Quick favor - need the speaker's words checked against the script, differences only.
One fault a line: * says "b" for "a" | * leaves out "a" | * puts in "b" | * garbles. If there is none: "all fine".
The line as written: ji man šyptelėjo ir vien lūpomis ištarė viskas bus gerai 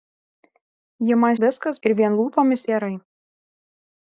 * says "viskas" for "šyptelėjo"
* leaves out "ištarė viskas bus"